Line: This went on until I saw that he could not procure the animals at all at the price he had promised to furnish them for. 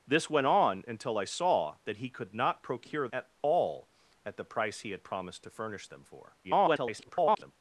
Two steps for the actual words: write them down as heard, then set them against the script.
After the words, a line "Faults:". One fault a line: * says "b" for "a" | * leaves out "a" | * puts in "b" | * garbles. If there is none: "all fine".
This went on until I saw that he could not procure at all at the price he had promised to furnish them for. [garbled]
Faults:
* leaves out "the animals"
* garbles